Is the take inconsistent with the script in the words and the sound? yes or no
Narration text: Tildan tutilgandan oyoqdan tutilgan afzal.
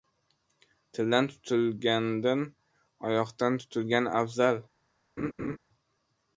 yes